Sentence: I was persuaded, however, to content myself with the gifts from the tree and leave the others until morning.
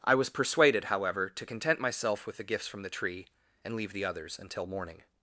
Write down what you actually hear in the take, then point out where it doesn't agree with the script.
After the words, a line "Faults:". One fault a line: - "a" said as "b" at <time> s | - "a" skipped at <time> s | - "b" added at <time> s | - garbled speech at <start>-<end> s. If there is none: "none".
I was persuaded, however, to content myself with the gifts from the tree and leave the others until morning.
Faults:
none